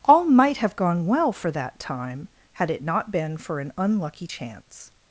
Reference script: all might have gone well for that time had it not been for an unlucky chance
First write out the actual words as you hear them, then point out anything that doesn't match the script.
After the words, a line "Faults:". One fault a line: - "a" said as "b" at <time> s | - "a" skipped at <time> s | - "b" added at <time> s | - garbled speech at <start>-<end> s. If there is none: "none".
all might have gone well for that time had it not been for an unlucky chance
Faults:
none